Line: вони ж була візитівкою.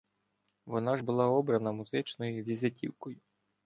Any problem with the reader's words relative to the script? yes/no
yes